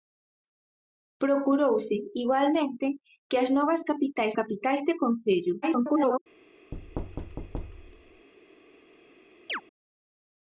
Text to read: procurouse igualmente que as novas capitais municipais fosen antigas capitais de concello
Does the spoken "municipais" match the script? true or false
false